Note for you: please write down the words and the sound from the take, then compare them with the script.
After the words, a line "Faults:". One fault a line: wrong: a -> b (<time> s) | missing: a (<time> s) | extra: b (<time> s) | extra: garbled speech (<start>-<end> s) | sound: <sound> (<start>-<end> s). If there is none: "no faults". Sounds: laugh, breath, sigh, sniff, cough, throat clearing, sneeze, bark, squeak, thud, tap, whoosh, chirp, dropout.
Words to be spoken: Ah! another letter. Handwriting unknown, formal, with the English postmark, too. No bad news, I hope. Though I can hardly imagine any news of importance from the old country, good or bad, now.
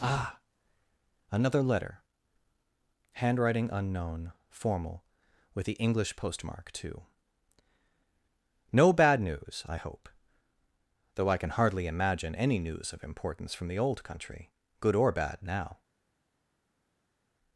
Ah! another letter. Handwriting unknown, formal, with the English postmark, too. No bad news, I hope. Though I can hardly imagine any news of importance from the old country, good or bad, now.
Faults:
no faults